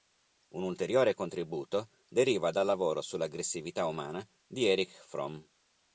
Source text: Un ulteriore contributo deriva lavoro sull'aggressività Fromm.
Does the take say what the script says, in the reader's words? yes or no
no